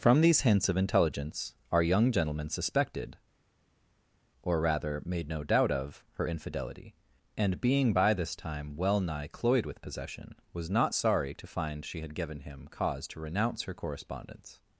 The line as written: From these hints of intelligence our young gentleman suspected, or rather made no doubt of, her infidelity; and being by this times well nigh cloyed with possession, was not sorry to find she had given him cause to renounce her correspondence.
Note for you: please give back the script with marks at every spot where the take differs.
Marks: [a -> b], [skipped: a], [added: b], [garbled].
From these hints of intelligence our young gentleman suspected, or rather made no doubt of, her infidelity; and being by this [times -> time] well nigh cloyed with possession, was not sorry to find she had given him cause to renounce her correspondence.